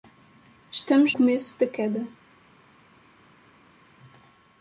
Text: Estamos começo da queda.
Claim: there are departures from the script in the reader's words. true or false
false